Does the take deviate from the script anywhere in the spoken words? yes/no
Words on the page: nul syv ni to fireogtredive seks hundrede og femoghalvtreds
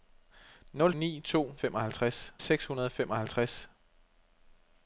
yes